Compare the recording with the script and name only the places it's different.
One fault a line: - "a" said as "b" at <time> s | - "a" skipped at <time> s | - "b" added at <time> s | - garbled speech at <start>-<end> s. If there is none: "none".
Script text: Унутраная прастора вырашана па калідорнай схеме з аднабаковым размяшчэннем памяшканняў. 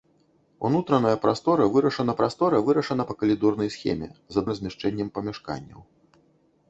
- "прастора вырашана" added at 2.2 s
- "аднабаковым" skipped at 4.4 s